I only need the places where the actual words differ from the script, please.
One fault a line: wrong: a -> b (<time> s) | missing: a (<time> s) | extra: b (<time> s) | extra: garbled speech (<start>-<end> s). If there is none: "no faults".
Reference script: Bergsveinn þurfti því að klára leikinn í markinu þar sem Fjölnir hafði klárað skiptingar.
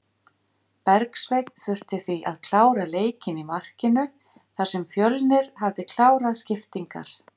no faults